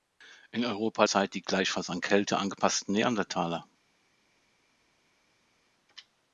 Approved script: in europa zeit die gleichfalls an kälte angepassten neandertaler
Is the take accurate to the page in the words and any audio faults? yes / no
yes